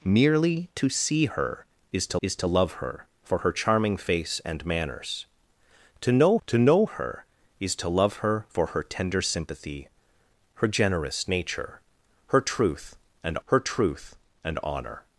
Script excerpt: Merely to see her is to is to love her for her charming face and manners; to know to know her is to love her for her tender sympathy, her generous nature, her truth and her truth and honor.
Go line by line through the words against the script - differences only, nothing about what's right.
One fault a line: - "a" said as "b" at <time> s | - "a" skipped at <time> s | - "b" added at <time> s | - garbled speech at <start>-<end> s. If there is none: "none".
none